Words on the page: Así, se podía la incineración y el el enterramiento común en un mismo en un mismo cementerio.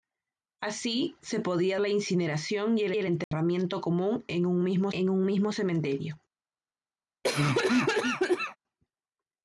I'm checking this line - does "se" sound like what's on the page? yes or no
yes